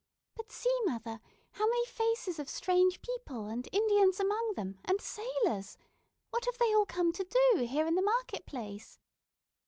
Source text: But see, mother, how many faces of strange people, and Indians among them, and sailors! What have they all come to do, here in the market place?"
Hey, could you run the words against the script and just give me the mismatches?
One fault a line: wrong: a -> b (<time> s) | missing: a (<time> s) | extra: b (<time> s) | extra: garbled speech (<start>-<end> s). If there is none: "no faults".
no faults